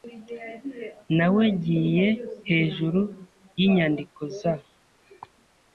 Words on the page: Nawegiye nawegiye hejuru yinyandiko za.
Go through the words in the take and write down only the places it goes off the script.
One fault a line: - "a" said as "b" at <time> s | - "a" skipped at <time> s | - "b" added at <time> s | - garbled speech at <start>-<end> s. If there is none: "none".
- "nawegiye" skipped at 2.1 s